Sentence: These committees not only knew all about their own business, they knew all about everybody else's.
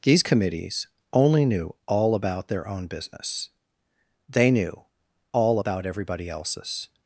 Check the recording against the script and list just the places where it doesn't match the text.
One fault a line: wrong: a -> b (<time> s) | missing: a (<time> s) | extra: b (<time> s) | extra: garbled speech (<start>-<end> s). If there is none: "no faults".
missing: not (0.9 s)